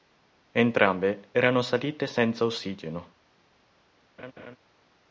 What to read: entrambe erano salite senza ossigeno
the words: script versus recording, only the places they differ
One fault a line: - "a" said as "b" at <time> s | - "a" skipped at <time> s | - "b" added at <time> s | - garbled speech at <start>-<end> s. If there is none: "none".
none